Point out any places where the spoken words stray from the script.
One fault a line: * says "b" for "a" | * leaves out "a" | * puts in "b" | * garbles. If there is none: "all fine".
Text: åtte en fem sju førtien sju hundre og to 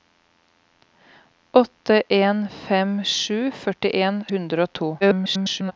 * leaves out "sju"
* garbles